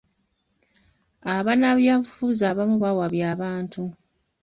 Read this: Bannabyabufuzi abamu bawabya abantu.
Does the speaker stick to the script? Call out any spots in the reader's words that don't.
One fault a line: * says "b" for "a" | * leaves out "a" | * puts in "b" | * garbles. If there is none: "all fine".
all fine